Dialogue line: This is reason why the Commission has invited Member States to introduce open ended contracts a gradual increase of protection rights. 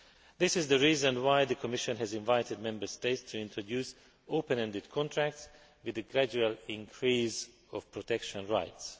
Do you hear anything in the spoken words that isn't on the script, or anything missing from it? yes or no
yes